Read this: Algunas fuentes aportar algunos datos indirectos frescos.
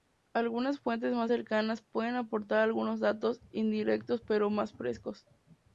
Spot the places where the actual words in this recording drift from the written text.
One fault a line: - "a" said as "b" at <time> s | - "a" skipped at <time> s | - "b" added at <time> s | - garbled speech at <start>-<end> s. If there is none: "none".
- "más cercanas pueden" added at 1.1 s
- "pero más" added at 4.3 s